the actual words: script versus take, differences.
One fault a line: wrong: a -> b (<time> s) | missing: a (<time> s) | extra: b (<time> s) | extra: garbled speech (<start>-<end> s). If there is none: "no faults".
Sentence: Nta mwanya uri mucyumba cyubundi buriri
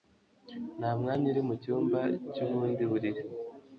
no faults